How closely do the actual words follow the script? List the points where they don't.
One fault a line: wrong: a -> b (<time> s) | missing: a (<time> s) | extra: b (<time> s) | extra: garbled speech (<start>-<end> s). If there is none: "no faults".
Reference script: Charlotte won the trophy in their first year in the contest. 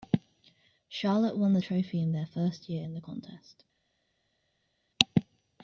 no faults